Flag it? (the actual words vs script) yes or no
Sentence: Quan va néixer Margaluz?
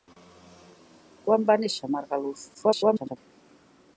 yes